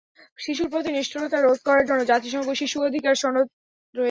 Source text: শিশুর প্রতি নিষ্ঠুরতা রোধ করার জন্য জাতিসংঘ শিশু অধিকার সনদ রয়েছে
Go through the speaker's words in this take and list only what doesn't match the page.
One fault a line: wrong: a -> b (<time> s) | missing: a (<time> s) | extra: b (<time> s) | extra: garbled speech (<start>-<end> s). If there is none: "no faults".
no faults